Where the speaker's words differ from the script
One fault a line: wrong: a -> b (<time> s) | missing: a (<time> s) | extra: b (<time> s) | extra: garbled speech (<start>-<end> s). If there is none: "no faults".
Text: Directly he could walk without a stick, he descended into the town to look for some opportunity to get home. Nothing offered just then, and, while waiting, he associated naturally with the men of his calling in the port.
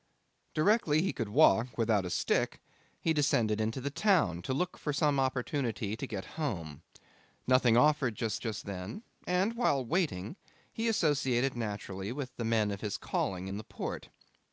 extra: just (8.4 s)